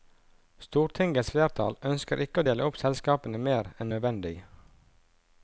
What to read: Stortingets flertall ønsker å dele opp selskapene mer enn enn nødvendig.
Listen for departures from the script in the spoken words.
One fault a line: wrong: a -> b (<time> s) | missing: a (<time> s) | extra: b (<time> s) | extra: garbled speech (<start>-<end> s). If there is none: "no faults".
extra: ikke (2.2 s)
missing: enn (3.9 s)